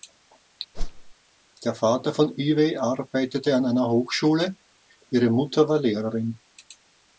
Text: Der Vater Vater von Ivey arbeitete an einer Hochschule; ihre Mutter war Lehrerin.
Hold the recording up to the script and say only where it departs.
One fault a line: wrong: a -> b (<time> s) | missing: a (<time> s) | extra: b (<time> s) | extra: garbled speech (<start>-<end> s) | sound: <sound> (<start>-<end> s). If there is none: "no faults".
sound: whoosh (0.7-1.1 s)
missing: Vater (2.1 s)